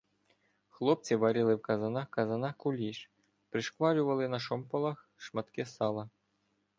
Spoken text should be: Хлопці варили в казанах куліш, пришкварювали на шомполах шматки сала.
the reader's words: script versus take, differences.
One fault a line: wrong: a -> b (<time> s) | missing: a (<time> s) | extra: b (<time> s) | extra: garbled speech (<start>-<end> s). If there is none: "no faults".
extra: казанах (2.1 s)